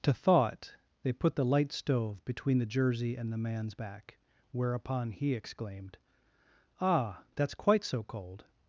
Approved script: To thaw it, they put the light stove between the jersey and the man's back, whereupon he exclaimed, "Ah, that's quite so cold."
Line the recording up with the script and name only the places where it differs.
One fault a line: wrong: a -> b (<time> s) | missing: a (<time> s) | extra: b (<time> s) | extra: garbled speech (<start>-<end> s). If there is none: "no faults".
no faults